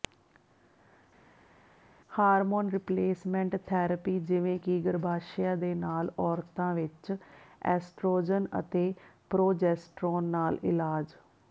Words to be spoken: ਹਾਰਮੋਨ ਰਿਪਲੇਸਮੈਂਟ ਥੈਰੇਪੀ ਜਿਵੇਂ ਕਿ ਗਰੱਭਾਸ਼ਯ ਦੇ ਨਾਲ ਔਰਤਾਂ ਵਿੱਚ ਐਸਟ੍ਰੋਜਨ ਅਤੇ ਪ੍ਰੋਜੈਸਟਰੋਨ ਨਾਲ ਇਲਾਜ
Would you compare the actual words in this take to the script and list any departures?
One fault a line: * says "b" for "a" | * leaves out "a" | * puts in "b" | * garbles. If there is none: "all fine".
all fine